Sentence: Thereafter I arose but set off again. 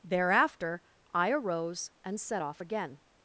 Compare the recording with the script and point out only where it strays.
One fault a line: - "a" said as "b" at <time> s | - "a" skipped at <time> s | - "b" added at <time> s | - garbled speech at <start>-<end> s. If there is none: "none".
- "but" said as "and" at 2.0 s